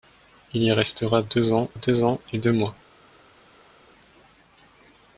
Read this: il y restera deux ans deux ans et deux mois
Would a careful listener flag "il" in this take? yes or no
no